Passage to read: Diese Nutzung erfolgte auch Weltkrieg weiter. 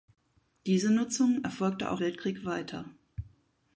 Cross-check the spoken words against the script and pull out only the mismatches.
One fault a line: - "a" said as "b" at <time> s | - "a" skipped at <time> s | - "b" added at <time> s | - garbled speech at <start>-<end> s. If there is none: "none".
none